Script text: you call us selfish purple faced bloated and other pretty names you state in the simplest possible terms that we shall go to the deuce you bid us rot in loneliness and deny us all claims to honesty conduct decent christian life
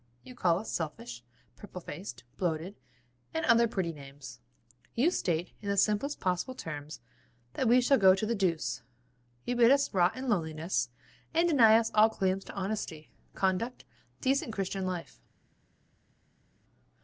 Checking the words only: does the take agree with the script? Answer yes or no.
yes